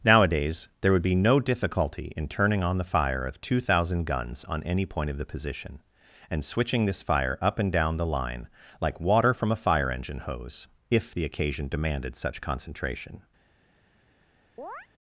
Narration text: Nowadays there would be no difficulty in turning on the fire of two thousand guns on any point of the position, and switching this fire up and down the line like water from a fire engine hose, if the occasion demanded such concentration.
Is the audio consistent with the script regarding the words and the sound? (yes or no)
no